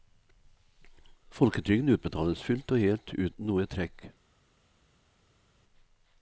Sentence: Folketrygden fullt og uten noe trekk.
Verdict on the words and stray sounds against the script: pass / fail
fail